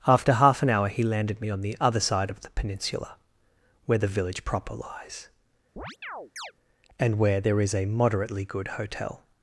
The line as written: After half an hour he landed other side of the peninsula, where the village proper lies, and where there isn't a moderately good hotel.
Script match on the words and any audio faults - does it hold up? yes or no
no